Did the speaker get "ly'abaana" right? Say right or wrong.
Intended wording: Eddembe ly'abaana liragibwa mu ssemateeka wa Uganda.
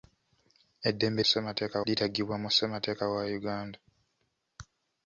wrong